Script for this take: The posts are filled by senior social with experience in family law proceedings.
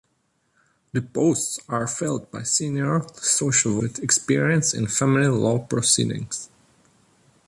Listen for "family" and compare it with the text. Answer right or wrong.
right